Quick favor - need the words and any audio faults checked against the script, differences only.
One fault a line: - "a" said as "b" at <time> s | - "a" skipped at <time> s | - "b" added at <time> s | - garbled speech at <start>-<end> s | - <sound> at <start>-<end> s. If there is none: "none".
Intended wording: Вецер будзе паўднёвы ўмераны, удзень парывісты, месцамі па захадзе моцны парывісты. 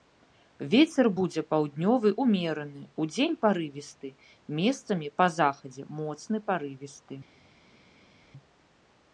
none